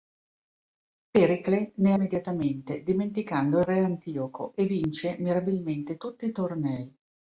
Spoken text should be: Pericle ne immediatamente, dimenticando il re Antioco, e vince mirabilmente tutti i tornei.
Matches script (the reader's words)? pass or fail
pass